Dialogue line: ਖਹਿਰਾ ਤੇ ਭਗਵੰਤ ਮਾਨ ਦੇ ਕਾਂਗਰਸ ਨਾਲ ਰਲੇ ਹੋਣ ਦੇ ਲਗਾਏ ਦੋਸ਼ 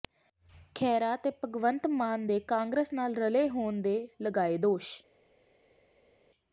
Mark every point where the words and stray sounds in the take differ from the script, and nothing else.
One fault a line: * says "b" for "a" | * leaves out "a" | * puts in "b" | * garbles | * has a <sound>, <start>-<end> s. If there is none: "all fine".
all fine